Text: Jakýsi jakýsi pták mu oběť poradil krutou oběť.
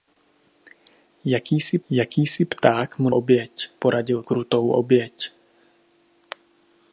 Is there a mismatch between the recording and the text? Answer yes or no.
no